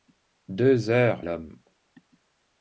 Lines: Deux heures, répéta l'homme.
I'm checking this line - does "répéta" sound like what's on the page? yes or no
no